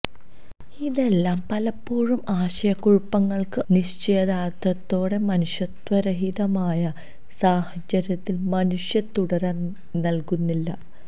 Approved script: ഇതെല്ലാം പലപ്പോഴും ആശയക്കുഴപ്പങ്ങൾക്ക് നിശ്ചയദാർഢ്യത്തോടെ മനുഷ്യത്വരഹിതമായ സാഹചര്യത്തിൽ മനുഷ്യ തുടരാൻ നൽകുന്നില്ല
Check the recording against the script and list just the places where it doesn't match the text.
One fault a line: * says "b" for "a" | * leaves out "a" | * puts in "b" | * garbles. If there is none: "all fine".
all fine